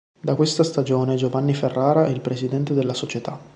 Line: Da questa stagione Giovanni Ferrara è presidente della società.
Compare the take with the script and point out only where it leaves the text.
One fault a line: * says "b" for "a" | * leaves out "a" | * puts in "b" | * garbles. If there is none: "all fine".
* puts in "il"